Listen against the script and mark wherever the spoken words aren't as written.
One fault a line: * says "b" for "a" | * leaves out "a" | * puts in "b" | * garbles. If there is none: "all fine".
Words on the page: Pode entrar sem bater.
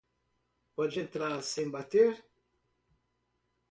all fine